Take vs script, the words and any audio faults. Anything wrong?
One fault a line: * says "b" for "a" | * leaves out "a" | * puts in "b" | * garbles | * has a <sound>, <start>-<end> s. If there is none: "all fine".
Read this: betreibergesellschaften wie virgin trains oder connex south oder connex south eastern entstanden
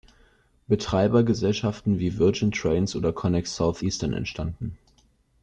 * leaves out "oder connex south"